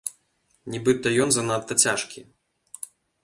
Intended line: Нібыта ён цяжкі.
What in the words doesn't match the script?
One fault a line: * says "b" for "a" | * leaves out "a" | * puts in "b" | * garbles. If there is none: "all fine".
* puts in "занадта"